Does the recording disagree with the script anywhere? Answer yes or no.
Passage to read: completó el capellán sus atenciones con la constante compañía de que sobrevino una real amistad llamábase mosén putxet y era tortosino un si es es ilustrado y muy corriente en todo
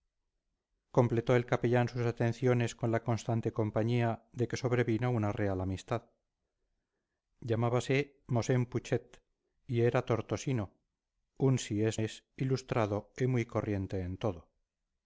no